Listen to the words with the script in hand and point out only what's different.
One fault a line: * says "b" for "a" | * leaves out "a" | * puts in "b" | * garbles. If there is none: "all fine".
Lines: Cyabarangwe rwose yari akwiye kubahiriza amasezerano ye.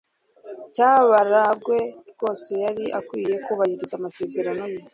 all fine